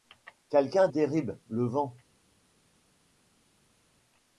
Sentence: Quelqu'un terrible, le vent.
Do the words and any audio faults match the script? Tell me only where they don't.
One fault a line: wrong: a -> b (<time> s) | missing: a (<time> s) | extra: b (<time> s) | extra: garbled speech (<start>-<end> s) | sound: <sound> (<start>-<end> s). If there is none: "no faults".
no faults